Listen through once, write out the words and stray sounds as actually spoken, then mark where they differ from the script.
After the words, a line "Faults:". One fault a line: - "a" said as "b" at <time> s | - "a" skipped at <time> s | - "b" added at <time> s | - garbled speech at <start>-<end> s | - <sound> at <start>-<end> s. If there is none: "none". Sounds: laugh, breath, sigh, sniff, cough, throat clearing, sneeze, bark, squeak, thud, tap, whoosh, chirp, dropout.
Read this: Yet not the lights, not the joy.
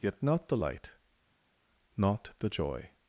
Yet not the light, not the joy.
Faults:
- "lights" said as "light" at 0.5 s